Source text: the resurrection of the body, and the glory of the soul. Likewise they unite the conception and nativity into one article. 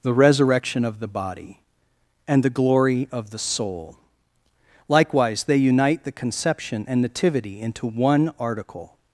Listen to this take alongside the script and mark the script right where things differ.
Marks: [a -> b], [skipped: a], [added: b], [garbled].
the resurrection of the body, and the glory of the soul. Likewise they unite the conception and nativity into one article.